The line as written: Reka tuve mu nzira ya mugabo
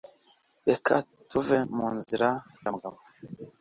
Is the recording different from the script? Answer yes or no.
no